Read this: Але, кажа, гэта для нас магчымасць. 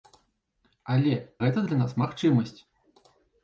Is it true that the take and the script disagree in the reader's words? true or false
true